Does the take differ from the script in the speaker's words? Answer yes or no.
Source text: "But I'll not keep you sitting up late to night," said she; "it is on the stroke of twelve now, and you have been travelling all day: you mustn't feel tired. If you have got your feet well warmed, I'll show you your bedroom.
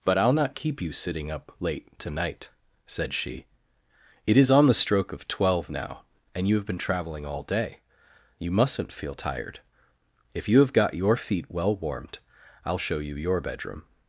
no